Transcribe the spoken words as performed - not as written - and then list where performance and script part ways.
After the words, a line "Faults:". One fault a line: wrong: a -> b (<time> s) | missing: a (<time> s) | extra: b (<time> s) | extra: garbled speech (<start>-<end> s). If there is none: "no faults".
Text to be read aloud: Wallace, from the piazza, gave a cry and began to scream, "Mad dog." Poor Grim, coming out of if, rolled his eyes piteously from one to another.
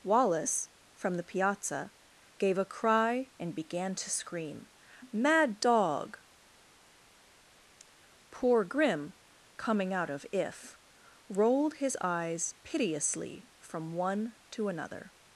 Wallace, from the piazza, gave a cry and began to scream, "Mad dog." Poor Grim, coming out of if, rolled his eyes piteously from one to another.
Faults:
no faults